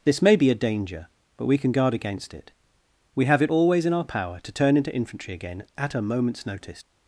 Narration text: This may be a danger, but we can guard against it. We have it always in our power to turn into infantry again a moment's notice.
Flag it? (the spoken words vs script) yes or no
yes